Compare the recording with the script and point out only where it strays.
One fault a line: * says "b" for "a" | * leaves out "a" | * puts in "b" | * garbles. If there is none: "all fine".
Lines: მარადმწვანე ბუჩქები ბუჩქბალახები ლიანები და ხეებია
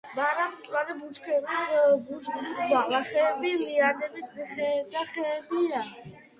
all fine